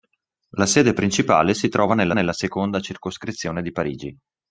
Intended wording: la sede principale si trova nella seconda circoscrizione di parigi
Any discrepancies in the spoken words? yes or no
yes